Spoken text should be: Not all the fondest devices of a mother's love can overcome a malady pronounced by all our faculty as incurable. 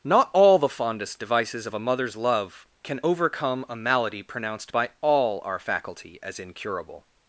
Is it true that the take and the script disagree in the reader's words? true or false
false